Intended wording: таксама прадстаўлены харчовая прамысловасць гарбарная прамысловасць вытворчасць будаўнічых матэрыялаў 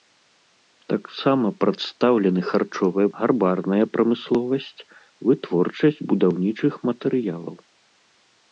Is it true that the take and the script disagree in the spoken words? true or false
true